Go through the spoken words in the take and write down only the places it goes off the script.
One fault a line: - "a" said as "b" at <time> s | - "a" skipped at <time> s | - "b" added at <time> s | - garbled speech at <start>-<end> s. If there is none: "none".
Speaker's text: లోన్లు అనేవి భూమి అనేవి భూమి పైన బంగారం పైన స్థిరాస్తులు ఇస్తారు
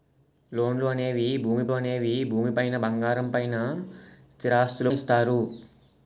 none